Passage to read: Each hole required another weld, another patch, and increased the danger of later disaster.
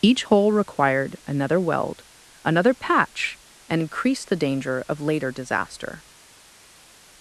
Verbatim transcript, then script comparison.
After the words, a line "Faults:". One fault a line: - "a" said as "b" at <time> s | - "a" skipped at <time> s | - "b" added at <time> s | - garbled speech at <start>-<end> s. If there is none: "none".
Each hole required another weld, another patch, and increased the danger of later disaster.
Faults:
none